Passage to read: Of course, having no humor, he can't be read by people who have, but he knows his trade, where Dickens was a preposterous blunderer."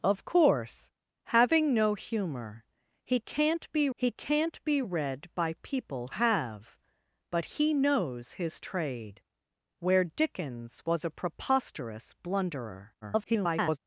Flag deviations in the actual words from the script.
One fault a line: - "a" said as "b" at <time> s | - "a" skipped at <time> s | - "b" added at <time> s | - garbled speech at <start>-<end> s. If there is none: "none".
- "he can't be" added at 3.9 s
- "who" skipped at 6.1 s
- garbled speech at 13.0-13.8 s